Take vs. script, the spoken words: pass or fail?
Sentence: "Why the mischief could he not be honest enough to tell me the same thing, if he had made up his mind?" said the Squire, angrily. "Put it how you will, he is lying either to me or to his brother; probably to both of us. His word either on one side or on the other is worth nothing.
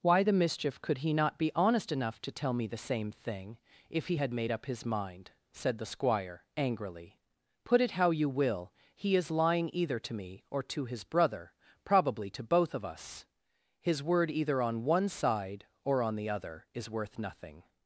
pass